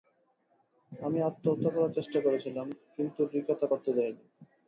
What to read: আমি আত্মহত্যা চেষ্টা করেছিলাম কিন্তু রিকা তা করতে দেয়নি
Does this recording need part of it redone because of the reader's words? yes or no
yes